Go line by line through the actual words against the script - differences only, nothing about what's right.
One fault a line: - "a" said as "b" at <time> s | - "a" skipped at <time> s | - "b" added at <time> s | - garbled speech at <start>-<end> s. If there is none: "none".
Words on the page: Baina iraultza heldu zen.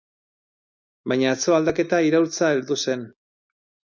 - "atzo aldaketa" added at 1.3 s